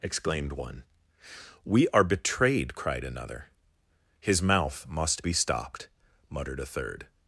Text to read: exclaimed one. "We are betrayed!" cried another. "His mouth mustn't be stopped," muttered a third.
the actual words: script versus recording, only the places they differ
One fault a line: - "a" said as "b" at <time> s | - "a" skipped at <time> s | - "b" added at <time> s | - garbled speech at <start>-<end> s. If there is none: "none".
- "mustn't" said as "must" at 4.9 s